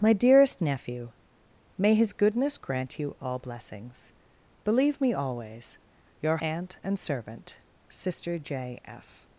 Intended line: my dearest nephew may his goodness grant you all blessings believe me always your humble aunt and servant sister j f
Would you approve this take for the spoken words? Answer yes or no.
no